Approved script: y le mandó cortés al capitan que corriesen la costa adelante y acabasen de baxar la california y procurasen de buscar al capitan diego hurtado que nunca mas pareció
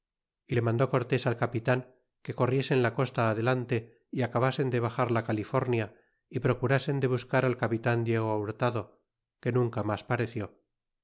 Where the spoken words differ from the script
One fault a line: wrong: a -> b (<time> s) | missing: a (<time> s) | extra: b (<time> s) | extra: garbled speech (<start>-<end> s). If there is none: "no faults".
no faults